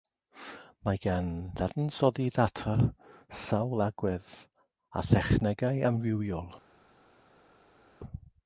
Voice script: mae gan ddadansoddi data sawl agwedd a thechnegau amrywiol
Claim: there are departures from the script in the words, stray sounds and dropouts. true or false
false